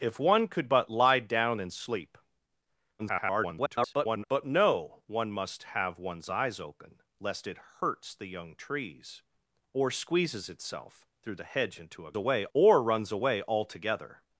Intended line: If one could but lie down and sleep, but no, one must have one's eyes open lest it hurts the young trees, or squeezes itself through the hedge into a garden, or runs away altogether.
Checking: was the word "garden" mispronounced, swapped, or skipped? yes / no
yes